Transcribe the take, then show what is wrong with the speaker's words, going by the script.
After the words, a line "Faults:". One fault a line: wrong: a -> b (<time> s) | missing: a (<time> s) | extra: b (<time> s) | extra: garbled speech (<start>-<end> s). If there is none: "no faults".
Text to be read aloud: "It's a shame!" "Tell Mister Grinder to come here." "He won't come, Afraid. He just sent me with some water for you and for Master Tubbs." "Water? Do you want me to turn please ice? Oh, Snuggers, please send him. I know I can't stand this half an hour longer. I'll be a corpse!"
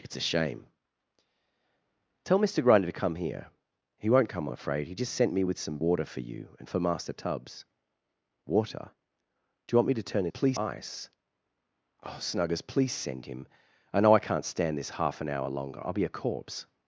"It's a shame!" "Tell Mister Grinder to come here." "He won't come, Afraid. He just sent me with some water for you and for Master Tubbs." "Water? Do you want me to turn please ice? Oh, Snuggers, please send him. I know I can't stand this half an hour longer. I'll be a corpse!"
Faults:
no faults